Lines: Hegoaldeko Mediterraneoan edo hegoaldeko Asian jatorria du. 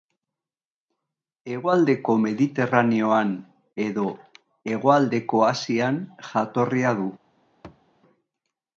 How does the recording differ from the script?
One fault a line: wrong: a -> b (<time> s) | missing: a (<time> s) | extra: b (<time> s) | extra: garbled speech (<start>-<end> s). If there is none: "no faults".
no faults